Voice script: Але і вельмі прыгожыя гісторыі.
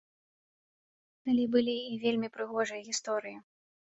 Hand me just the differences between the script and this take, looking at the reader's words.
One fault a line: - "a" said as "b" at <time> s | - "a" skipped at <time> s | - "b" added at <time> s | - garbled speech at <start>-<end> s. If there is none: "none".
- "былі" added at 1.6 s